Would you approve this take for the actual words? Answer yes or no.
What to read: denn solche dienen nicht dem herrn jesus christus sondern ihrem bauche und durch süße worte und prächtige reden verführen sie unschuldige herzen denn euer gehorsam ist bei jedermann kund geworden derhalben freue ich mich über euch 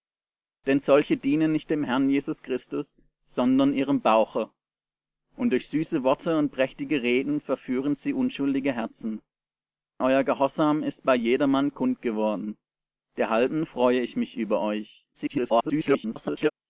no